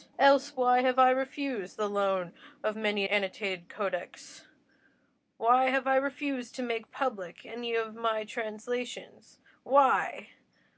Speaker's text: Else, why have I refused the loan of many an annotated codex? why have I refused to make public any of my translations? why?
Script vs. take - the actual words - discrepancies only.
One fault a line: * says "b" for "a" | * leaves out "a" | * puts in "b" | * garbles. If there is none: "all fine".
* leaves out "an"